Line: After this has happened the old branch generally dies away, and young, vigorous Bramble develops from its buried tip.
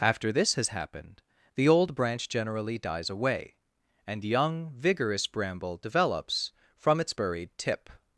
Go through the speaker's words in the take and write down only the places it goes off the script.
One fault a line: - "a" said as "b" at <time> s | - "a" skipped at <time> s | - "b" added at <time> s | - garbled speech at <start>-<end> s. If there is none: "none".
none